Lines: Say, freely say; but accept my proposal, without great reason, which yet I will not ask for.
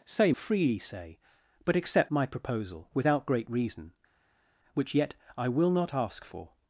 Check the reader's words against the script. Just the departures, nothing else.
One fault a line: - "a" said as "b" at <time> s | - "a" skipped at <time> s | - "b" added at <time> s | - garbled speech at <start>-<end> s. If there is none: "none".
none